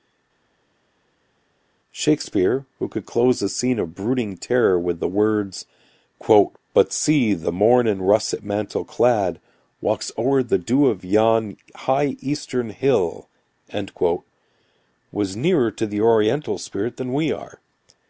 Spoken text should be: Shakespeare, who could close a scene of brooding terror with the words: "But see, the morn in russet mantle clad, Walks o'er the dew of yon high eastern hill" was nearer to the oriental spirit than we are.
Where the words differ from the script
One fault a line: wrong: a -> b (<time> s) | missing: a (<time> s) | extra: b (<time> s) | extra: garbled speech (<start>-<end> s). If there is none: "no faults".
no faults